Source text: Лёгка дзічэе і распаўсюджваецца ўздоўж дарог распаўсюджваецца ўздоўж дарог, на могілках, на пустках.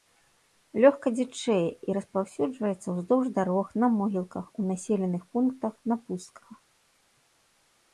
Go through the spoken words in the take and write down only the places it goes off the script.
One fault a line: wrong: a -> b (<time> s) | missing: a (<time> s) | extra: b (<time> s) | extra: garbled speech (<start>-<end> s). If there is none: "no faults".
wrong: распаўсюджваецца ўздоўж дарог на могілках -> на могілках у населеных пунктах (3.9 s)